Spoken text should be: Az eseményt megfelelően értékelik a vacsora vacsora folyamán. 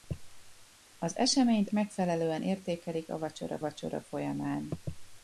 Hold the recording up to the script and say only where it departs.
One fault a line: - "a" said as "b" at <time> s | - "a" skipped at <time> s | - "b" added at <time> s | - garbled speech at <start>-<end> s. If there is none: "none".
none